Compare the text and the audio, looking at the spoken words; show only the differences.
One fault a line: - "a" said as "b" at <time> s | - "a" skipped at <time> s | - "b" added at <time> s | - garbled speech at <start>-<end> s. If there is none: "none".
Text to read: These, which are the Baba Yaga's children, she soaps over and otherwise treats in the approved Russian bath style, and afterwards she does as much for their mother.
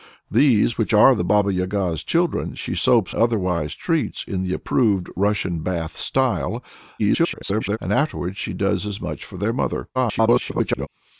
- "over and" skipped at 3.1 s
- garbled speech at 7.0-7.8 s
- garbled speech at 9.9-10.9 s